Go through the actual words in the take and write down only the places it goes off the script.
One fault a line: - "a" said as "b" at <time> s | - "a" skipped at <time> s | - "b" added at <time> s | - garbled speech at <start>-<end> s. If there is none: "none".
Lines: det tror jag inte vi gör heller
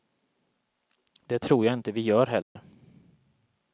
none